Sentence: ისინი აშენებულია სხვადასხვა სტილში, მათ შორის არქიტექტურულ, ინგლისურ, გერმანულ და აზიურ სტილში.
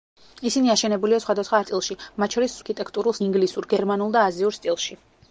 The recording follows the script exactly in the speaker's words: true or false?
true